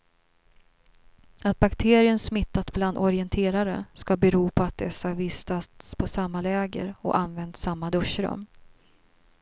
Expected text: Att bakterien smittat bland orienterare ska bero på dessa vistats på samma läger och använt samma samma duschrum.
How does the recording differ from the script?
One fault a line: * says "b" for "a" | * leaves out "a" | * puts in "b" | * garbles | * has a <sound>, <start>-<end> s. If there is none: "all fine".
* puts in "att"
* leaves out "samma"